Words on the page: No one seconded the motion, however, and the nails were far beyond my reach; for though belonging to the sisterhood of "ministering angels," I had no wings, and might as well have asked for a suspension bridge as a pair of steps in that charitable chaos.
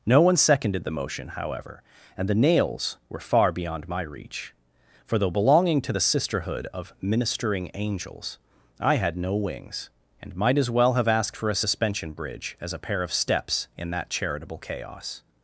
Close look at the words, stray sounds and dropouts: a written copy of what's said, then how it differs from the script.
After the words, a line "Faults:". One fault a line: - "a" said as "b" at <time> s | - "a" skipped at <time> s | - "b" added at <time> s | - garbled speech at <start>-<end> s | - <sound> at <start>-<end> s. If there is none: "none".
No one seconded the motion, however, and the nails were far beyond my reach; for though belonging to the sisterhood of "ministering angels," I had no wings, and might as well have asked for a suspension bridge as a pair of steps in that charitable chaos.
Faults:
none